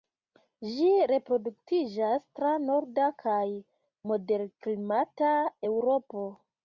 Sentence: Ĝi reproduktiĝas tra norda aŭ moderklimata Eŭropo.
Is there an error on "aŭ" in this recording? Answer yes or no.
yes